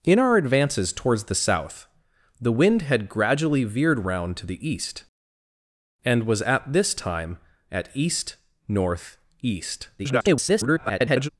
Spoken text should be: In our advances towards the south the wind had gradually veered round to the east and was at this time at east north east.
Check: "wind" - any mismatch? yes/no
no